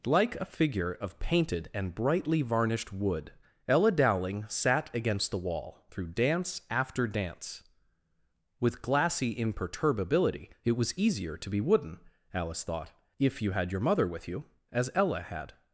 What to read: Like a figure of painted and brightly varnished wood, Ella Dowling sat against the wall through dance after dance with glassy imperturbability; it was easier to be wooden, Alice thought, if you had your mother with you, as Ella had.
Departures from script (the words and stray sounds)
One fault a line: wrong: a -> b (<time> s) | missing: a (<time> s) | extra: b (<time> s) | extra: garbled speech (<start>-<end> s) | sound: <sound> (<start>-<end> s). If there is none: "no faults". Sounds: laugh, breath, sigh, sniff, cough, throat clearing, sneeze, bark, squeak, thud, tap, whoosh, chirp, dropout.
no faults